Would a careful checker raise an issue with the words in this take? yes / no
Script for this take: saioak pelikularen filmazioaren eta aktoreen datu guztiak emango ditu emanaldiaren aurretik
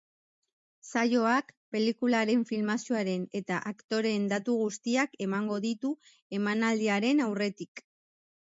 no